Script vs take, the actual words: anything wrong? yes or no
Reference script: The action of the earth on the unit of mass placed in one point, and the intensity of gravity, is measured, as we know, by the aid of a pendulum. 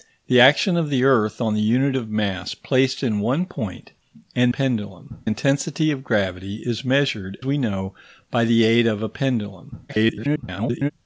yes